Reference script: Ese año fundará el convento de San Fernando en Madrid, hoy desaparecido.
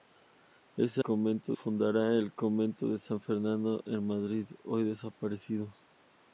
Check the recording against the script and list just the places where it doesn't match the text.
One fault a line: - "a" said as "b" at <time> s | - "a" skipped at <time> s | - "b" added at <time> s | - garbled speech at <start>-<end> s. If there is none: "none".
- "año" said as "convento" at 1.0 s